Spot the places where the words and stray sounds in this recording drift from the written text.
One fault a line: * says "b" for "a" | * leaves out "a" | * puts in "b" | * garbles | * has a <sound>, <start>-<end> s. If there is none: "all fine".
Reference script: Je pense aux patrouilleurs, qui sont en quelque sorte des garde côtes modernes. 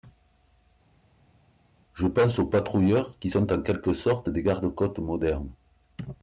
all fine